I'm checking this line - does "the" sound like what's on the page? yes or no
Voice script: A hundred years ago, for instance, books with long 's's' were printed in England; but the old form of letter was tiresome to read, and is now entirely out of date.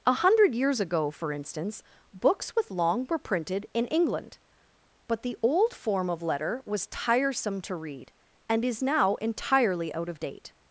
yes